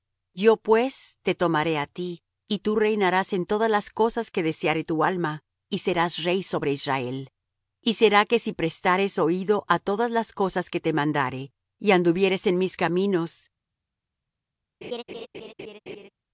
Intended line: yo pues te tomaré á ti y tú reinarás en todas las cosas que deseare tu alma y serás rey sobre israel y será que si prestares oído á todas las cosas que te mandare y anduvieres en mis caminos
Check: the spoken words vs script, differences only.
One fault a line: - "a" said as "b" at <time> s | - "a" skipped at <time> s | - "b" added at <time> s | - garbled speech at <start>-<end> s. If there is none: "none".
none